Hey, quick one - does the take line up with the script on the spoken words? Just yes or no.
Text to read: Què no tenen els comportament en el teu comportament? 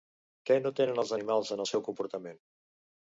no